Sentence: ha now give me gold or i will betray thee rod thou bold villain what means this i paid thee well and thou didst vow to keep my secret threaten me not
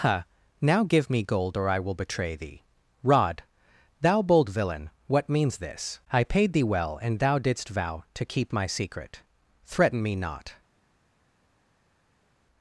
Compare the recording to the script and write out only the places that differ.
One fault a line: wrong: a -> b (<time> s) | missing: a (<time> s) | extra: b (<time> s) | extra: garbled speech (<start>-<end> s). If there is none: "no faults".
no faults